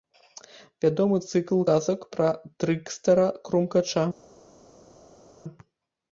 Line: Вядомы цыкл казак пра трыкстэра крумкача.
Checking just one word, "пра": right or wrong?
right